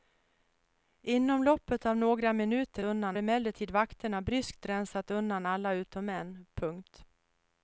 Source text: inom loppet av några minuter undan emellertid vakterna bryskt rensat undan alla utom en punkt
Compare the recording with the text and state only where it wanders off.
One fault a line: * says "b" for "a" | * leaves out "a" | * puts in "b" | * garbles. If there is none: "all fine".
all fine